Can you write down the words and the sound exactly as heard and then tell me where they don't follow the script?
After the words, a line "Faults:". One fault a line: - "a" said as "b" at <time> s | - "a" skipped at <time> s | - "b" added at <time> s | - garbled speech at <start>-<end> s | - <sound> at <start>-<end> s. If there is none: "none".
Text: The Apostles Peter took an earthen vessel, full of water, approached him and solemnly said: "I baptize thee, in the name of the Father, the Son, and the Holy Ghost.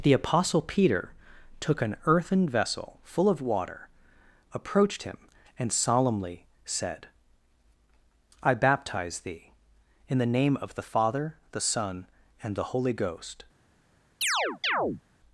The Apostle Peter took an earthen vessel, full of water, approached him and solemnly said: "I baptize thee, in the name of the Father, the Son, and the Holy Ghost.
Faults:
- "Apostles" said as "Apostle" at 0.1 s
- chirp at 14.2-15.0 s